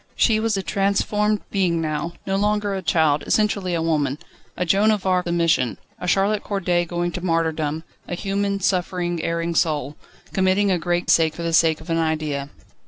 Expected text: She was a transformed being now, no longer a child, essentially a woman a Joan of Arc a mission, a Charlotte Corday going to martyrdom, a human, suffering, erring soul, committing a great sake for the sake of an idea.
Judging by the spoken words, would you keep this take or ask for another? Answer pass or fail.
pass